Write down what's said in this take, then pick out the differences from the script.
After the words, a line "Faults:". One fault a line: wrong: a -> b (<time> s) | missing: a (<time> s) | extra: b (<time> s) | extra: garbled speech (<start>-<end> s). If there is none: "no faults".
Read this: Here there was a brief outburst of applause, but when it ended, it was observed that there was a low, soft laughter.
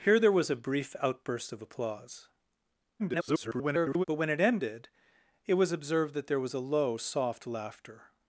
Here there was a brief outburst of applause, [garbled] but when it ended, it was observed that there was a low, soft laughter.
Faults:
extra: garbled speech (3.0-4.0 s)